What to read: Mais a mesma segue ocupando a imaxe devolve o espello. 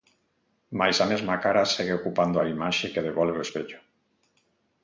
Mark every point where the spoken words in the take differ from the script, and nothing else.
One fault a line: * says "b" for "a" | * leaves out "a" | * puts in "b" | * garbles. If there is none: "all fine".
* puts in "cara"
* puts in "que"